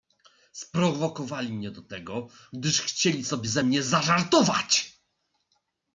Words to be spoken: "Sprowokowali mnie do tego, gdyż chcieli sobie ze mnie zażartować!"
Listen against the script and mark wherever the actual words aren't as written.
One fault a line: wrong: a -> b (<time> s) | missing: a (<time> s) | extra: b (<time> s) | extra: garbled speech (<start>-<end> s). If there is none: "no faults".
no faults